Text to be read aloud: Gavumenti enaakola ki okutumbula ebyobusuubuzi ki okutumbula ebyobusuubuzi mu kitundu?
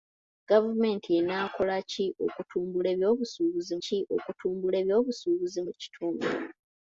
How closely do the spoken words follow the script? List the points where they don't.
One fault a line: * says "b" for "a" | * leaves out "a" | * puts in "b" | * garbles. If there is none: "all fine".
all fine